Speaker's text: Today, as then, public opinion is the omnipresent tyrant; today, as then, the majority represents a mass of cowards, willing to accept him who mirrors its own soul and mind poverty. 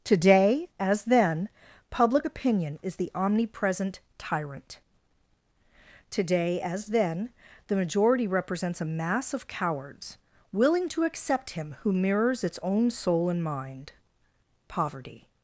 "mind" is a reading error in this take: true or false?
false